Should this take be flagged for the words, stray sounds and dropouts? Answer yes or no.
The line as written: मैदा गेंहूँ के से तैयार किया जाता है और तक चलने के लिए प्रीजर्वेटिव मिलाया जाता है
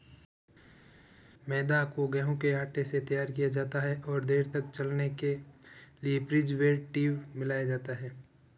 yes